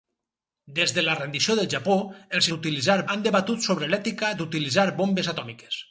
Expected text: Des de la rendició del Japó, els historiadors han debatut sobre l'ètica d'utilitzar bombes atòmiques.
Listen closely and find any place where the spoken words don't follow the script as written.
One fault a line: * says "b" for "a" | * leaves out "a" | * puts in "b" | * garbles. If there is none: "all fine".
* says "d'utilitzar" for "historiadors"